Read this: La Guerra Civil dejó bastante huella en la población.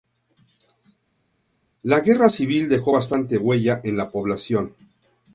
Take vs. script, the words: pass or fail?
pass